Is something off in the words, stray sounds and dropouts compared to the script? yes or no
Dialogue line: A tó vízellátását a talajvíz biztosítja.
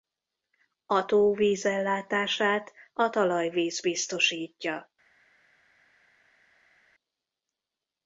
no